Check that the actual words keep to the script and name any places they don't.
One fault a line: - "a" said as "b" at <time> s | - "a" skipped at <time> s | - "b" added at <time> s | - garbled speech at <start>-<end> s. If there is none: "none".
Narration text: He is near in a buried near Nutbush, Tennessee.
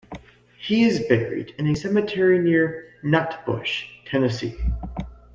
- "near" said as "buried" at 1.1 s
- "buried" said as "cemetery" at 1.7 s